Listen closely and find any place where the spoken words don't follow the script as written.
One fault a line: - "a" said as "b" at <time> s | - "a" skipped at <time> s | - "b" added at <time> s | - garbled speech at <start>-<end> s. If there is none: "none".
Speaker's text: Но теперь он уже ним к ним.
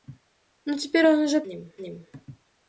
none